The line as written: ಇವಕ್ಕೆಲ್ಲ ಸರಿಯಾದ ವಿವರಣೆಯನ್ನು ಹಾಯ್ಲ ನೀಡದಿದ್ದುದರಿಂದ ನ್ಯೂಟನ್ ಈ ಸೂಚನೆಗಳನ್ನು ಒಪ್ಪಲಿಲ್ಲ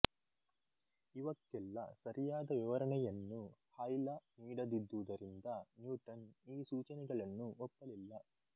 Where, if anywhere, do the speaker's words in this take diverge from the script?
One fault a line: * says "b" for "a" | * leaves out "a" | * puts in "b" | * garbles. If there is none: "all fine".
all fine